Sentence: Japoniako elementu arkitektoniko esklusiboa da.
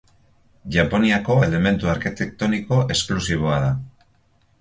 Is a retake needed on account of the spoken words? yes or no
no